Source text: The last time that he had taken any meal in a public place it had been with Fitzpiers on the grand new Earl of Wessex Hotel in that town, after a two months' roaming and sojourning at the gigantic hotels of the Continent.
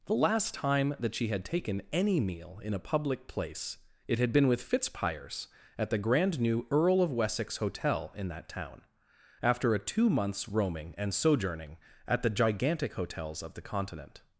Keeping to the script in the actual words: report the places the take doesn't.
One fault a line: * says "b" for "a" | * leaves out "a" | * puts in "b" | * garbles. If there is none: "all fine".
* says "she" for "he"
* says "at" for "on"